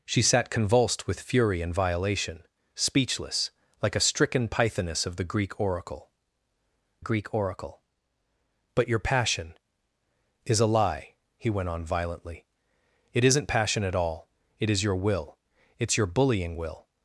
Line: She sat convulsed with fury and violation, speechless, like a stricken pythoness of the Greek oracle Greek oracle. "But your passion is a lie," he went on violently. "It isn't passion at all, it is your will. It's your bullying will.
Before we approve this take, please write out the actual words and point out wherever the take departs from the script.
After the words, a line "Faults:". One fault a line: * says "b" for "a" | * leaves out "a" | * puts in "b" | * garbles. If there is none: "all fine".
She sat convulsed with fury and violation, speechless, like a stricken pythoness of the Greek oracle Greek oracle. "But your passion is a lie," he went on violently. "It isn't passion at all, it is your will. It's your bullying will.
Faults:
all fine